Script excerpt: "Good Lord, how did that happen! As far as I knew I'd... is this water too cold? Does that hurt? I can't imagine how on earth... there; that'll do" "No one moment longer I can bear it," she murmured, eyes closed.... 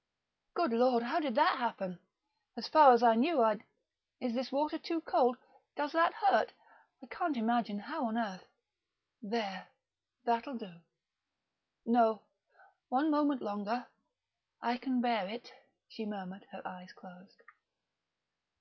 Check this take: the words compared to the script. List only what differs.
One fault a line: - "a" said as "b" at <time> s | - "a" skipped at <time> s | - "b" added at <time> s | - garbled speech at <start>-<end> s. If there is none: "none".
- "her" added at 16.5 s